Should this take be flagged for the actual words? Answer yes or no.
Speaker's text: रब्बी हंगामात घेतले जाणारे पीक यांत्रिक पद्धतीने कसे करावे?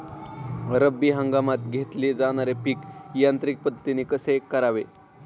no